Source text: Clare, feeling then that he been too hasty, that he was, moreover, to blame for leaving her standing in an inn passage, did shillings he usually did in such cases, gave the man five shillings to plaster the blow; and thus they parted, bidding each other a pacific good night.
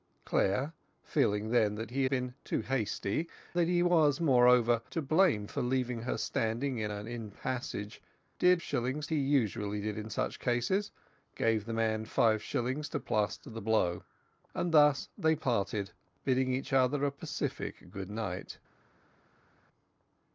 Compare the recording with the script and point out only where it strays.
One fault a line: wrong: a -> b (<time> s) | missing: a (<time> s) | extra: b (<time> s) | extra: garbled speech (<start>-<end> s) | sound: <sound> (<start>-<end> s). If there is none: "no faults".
no faults